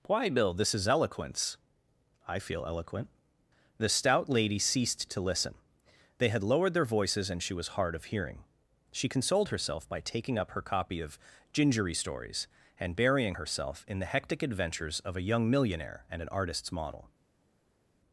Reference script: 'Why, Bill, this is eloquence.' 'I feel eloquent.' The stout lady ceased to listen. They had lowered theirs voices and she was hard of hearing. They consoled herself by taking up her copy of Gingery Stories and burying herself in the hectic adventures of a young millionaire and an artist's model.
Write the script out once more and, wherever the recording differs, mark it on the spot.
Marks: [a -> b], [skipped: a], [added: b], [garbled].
'Why, Bill, this is eloquence.' 'I feel eloquent.' The stout lady ceased to listen. They had lowered [theirs -> their] voices and she was hard of hearing. [They -> She] consoled herself by taking up her copy of Gingery Stories and burying herself in the hectic adventures of a young millionaire and an artist's model.